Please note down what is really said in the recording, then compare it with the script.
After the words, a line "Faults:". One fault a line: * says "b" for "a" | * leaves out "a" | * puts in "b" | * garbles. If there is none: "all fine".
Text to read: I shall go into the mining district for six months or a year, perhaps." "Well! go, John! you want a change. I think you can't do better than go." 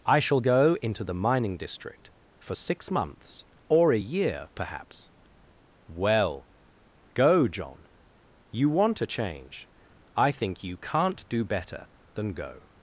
I shall go into the mining district for six months or a year, perhaps." "Well! go, John! you want a change. I think you can't do better than go."
Faults:
all fine